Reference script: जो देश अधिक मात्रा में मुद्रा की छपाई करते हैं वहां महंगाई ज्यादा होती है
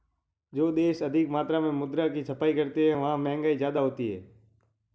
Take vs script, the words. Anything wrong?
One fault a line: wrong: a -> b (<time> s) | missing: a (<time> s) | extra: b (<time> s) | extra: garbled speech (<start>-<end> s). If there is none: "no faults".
no faults